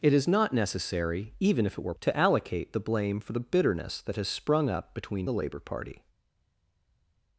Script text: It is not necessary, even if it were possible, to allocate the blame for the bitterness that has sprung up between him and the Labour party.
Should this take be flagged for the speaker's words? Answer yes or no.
yes